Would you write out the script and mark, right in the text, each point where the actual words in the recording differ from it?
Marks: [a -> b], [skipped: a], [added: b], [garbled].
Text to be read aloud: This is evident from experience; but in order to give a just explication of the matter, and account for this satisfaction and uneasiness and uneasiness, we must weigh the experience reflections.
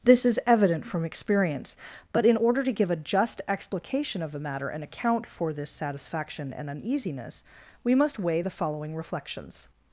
This is evident from experience; but in order to give a just explication of the matter, and account for this satisfaction and uneasiness [skipped: and uneasiness,] we must weigh the [experience -> following] reflections.